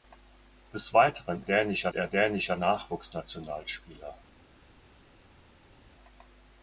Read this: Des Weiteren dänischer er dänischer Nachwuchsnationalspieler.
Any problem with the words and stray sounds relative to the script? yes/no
no